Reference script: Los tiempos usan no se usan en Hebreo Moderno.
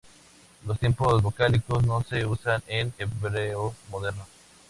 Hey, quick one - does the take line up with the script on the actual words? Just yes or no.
no